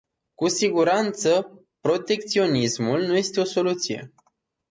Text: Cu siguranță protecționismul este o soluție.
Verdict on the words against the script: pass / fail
fail